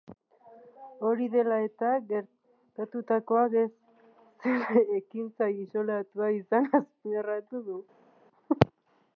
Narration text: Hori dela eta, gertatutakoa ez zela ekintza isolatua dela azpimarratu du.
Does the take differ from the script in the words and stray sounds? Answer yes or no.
yes